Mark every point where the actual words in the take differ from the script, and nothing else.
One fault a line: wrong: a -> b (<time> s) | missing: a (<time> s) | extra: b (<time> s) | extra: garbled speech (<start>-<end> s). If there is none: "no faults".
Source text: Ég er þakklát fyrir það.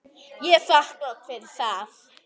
no faults